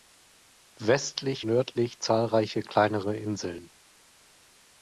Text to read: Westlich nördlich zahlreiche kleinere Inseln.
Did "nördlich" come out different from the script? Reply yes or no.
no